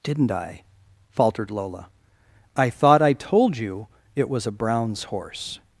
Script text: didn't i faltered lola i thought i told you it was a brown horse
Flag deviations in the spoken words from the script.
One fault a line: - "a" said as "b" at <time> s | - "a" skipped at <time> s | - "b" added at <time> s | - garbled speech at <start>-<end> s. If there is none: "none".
- "brown" said as "browns" at 4.5 s